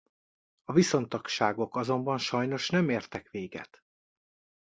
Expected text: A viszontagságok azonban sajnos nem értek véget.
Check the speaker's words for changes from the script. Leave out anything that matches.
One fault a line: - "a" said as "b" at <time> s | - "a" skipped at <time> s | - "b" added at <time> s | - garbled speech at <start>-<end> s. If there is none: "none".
none